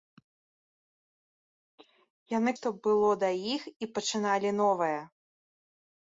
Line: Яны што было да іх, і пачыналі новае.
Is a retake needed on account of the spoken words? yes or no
no